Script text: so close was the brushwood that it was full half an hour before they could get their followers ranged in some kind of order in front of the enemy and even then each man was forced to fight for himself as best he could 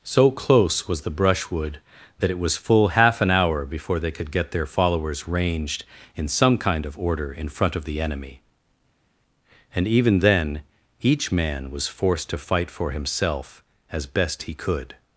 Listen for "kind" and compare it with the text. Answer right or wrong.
right